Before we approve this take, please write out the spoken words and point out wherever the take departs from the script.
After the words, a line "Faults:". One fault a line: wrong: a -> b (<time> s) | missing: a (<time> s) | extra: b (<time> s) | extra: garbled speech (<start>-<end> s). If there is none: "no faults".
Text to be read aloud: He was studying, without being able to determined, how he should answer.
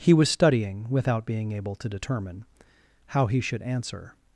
He was studying, without being able to determine, how he should answer.
Faults:
wrong: determined -> determine (1.9 s)